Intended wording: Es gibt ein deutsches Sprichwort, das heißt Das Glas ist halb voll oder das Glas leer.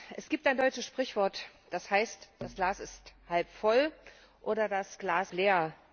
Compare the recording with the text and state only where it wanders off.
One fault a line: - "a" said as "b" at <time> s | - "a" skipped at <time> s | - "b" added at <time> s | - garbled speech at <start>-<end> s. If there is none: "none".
none